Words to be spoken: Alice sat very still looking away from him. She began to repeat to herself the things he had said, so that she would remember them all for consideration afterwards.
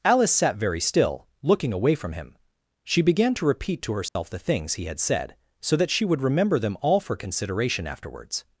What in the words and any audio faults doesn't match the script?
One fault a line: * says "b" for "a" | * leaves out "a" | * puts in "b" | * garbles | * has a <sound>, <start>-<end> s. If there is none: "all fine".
* has a dropout, 4.1-4.2 s